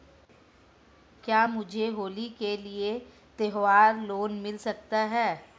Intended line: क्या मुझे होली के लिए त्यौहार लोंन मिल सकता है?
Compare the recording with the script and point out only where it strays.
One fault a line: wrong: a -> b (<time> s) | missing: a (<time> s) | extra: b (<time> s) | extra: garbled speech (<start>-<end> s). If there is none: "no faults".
no faults